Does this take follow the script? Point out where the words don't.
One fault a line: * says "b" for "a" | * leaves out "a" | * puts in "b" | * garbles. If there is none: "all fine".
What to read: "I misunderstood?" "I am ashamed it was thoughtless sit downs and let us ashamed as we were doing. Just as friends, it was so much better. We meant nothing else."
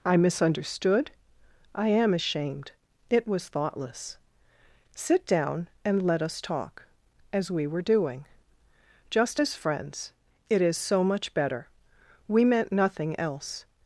* says "down" for "downs"
* says "talk" for "ashamed"
* says "is" for "was"